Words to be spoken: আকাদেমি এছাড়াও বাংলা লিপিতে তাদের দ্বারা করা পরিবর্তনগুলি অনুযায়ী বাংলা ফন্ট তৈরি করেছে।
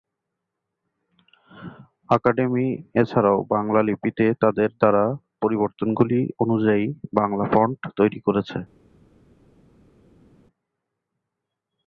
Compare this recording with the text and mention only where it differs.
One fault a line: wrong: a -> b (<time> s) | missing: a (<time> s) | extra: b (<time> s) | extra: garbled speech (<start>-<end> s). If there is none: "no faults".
missing: করা (5.0 s)